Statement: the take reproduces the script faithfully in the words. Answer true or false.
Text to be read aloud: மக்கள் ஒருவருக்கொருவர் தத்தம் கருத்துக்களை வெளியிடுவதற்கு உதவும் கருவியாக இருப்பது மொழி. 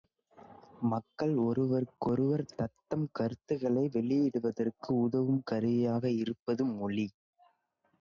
true